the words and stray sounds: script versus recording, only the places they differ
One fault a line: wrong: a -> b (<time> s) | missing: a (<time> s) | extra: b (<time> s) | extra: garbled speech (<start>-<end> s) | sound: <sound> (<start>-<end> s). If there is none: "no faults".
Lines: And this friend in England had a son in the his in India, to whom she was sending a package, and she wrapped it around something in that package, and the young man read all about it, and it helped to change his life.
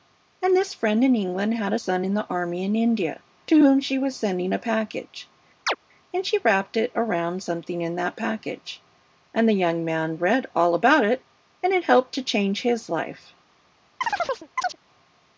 wrong: his -> army (2.3 s)
sound: chirp (5.7-5.8 s)
sound: chirp (14.0-14.8 s)